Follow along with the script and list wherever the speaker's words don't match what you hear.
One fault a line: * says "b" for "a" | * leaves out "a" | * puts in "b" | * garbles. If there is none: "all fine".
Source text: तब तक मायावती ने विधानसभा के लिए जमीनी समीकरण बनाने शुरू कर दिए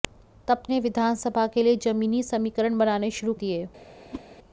* leaves out "तक मायावती"
* leaves out "कर"